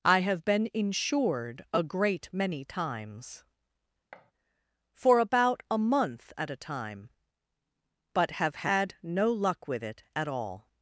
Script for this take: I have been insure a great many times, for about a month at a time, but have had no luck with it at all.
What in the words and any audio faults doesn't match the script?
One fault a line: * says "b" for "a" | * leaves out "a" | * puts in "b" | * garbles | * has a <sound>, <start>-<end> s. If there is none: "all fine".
* says "insured" for "insure"
* has a thud, 4.1-4.3 s